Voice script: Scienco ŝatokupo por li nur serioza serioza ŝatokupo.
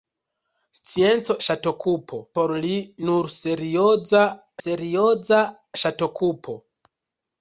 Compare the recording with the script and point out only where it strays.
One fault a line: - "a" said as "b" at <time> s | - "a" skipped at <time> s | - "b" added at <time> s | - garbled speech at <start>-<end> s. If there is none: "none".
none